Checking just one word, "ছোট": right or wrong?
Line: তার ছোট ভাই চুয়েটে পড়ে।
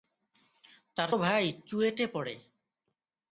wrong